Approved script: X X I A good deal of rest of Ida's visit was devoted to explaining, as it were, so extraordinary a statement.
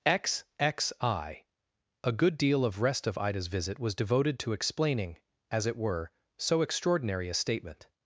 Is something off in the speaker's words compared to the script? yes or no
no